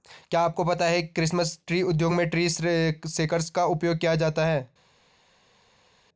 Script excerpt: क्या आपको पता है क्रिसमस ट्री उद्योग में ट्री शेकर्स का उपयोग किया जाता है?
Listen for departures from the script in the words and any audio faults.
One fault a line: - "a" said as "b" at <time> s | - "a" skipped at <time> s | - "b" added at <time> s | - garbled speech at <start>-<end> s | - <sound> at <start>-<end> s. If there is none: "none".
none